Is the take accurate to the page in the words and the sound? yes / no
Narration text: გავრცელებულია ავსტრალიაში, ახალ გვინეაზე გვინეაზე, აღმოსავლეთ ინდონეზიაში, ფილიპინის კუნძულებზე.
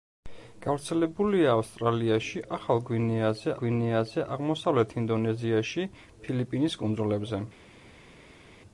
yes